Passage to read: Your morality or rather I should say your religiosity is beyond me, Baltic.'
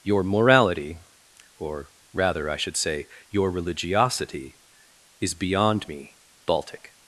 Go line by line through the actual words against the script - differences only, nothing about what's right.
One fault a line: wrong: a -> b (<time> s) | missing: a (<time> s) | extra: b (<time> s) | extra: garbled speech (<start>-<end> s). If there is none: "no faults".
no faults